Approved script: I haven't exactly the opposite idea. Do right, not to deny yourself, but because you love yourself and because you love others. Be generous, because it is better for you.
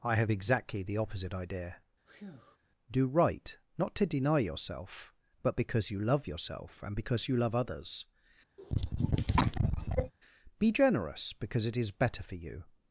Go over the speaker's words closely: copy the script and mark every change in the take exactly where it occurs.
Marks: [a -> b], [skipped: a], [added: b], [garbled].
I [haven't -> have] exactly the opposite idea. Do right, not to deny yourself, but because you love yourself and because you love others. Be generous, because it is better for you.